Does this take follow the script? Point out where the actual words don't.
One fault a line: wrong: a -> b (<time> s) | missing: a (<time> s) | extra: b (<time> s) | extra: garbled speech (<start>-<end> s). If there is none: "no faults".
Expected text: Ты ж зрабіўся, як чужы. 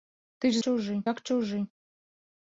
wrong: зрабіўся -> чужы (0.7 s)